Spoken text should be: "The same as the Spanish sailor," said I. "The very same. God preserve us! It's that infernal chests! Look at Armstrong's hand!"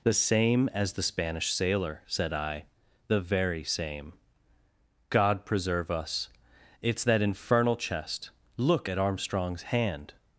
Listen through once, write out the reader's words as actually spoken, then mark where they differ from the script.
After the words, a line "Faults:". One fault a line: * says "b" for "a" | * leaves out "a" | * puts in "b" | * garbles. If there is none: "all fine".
"The same as the Spanish sailor," said I. "The very same. God preserve us! It's that infernal chest! Look at Armstrong's hand!"
Faults:
* says "chest" for "chests"